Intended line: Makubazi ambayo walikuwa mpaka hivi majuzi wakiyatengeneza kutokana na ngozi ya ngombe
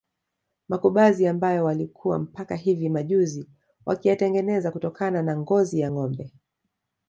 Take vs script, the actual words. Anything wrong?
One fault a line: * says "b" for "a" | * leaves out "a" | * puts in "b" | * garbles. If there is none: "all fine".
all fine